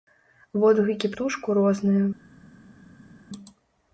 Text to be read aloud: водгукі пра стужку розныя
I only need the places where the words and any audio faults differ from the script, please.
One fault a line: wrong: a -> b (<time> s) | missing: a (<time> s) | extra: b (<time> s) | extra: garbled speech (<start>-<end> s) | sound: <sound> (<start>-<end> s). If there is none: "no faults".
missing: пра (1.1 s)